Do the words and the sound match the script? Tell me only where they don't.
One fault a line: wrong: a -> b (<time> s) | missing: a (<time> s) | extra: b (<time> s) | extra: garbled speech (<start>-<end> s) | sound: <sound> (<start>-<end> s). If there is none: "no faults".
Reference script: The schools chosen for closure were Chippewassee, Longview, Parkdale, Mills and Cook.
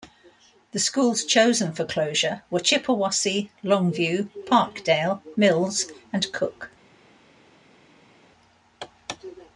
no faults